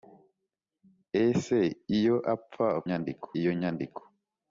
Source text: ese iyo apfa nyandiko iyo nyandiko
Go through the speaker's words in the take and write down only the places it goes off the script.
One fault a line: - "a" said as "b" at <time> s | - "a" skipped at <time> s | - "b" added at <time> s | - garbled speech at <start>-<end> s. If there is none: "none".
none